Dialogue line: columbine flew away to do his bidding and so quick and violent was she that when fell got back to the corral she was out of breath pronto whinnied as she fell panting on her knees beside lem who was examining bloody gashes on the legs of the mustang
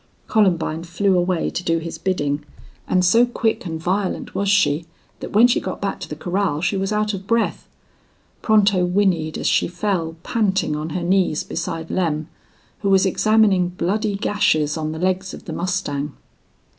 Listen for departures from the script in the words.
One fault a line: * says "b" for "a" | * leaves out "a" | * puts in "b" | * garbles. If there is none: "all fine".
* says "she" for "fell"